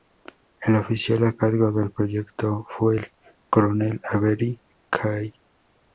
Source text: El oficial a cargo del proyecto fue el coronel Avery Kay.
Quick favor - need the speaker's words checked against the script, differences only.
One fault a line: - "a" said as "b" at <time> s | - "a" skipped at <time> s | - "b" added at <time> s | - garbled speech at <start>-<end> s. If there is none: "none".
none